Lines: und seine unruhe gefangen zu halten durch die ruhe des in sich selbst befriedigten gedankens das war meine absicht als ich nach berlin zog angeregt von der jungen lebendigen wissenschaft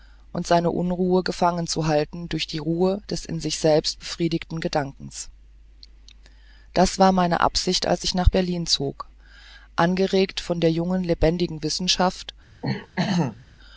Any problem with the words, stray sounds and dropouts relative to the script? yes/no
yes